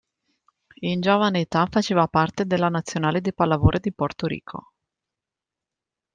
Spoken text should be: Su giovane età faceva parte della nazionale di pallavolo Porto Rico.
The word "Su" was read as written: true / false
false